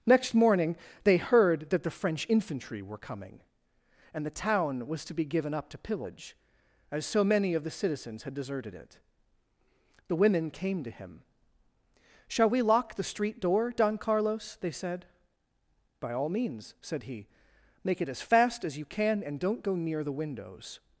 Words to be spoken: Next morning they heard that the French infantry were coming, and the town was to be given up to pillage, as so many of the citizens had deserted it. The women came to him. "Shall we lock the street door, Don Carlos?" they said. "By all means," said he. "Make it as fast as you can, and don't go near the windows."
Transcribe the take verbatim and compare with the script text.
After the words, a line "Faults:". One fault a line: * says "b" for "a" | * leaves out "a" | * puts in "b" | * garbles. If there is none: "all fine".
Next morning they heard that the French infantry were coming, and the town was to be given up to pillage, as so many of the citizens had deserted it. The women came to him. "Shall we lock the street door, Don Carlos?" they said. "By all means," said he. "Make it as fast as you can, and don't go near the windows."
Faults:
all fine